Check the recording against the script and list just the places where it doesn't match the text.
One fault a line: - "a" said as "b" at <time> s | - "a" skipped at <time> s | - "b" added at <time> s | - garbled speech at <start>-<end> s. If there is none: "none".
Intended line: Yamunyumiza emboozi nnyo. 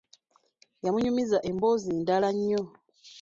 - "ndala" added at 2.0 s